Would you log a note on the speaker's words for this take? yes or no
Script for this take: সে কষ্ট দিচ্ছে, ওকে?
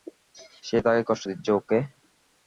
yes